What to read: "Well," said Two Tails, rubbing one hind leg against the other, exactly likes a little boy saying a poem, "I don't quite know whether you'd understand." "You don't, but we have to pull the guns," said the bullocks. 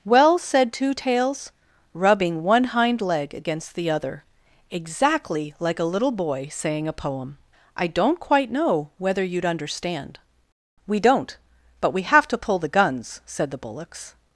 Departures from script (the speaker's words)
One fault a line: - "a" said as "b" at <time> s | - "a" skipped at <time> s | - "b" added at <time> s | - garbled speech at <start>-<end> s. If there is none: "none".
- "likes" said as "like" at 5.6 s
- "You" said as "We" at 10.9 s